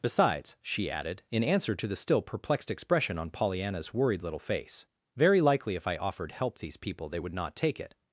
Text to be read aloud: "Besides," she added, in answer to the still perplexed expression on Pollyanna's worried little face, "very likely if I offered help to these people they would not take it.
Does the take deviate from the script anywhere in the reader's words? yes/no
yes